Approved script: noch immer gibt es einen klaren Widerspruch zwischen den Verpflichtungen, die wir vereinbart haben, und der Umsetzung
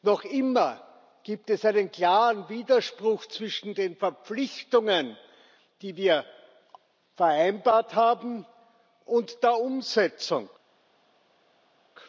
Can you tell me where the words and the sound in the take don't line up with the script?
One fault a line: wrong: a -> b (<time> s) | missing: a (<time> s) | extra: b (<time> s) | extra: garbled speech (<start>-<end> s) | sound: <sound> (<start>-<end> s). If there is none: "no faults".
no faults